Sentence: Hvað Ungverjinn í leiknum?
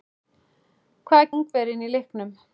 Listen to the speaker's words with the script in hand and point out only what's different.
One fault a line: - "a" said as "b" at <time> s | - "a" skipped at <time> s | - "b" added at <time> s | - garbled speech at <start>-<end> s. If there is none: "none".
none